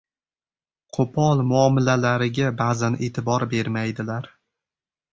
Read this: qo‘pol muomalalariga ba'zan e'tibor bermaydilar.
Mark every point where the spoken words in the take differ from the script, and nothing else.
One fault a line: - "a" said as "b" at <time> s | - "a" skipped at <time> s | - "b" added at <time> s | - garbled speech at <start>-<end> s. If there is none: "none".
none